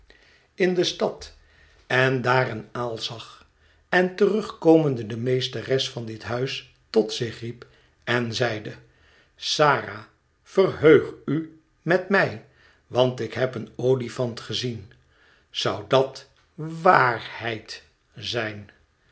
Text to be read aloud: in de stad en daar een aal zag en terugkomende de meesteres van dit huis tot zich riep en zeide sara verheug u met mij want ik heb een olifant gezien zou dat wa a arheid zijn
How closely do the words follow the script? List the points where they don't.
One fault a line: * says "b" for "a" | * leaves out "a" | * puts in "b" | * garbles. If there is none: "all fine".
all fine